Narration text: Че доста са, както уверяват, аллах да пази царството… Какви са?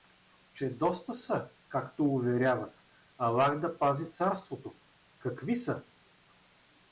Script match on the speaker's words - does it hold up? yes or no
yes